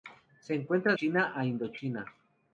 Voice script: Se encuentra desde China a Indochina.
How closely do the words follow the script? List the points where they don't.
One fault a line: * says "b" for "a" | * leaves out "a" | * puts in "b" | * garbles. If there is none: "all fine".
* leaves out "desde"